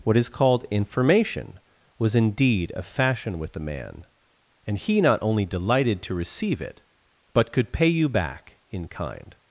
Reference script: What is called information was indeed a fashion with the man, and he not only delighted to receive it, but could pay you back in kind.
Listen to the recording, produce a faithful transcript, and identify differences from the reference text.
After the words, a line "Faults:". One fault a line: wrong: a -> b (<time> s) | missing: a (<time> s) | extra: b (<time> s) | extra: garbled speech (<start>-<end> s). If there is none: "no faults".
What is called information was indeed a fashion with the man, and he not only delighted to receive it, but could pay you back in kind.
Faults:
no faults